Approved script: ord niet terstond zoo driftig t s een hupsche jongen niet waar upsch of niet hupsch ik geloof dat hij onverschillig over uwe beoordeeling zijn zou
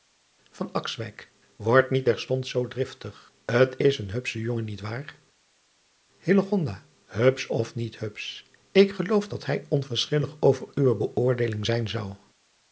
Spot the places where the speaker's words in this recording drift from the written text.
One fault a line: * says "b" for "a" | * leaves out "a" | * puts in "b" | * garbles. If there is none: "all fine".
all fine